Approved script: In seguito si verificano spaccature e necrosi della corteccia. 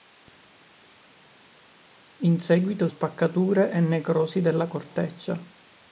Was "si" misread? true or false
true